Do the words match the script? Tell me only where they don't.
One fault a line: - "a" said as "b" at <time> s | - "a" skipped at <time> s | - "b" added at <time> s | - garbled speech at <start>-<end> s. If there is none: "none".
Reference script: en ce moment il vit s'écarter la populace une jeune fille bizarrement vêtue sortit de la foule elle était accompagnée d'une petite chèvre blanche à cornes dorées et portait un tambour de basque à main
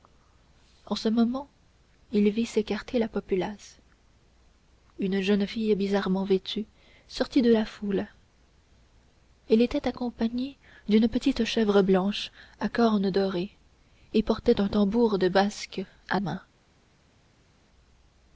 none